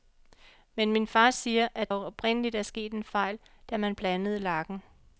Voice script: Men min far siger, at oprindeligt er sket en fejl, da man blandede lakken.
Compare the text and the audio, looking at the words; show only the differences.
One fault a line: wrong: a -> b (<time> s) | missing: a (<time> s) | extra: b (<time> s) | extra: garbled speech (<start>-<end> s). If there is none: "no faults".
no faults